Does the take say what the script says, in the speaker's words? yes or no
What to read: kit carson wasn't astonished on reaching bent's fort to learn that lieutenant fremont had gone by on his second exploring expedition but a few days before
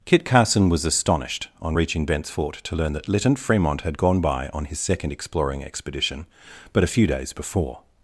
no